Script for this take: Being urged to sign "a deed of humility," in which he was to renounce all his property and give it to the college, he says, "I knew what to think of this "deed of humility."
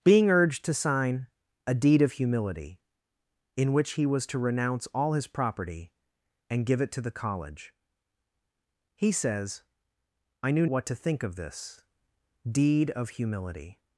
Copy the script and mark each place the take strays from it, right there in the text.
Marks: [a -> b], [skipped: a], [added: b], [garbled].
Being urged to sign "a deed of humility," in which he was to renounce all his property and give it to the college, he says, "I knew what to think of this "deed of humility."